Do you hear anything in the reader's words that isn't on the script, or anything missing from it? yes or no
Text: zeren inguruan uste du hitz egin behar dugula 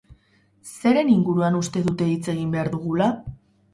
yes